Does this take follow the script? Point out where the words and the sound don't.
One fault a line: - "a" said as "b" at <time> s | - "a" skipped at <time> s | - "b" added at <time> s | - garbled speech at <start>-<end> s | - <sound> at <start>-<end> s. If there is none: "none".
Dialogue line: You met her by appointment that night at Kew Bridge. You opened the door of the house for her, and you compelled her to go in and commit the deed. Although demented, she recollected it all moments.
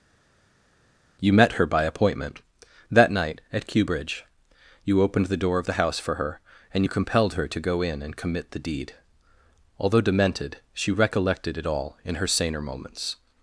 - "in her saner" added at 12.0 s